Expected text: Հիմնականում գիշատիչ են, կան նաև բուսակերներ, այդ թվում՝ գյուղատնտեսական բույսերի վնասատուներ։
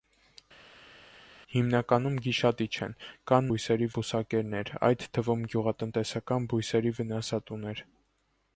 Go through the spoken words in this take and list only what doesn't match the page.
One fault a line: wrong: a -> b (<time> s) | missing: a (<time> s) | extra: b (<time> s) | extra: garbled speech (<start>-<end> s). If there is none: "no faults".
wrong: նաև -> բույսերի (3.5 s)